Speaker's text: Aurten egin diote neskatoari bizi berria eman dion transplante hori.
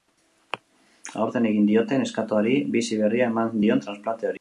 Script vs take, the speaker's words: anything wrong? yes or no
no